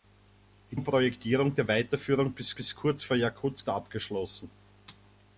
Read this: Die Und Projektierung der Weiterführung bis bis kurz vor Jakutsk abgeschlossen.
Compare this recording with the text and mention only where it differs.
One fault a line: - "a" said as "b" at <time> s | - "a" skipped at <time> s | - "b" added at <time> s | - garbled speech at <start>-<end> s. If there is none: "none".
none